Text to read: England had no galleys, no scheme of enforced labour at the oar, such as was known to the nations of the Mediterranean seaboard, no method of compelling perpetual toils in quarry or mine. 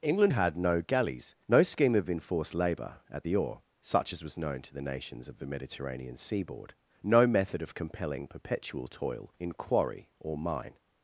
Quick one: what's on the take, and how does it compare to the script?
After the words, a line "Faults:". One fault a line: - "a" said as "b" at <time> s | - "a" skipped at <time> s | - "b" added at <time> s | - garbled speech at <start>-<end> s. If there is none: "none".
England had no galleys, no scheme of enforced labour at the oar, such as was known to the nations of the Mediterranean seaboard, no method of compelling perpetual toil in quarry or mine.
Faults:
- "toils" said as "toil" at 8.9 s